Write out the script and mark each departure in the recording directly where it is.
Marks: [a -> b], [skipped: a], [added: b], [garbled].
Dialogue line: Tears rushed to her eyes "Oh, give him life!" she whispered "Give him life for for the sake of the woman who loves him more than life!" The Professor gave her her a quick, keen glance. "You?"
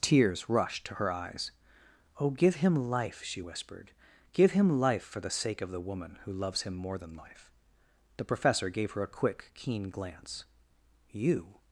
Tears rushed to her eyes "Oh, give him life!" she whispered "Give him life for [skipped: for] the sake of the woman who loves him more than life!" The Professor gave her [skipped: her] a quick, keen glance. "You?"